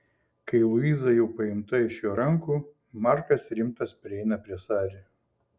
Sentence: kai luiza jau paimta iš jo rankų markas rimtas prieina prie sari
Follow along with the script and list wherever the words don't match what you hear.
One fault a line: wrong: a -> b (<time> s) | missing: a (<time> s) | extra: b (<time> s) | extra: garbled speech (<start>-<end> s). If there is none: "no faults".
no faults